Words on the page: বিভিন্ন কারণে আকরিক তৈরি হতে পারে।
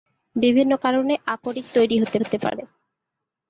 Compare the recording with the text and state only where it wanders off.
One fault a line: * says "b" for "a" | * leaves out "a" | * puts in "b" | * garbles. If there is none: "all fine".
* puts in "হতে"